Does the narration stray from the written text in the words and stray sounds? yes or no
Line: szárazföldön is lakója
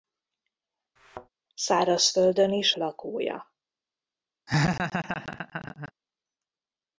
yes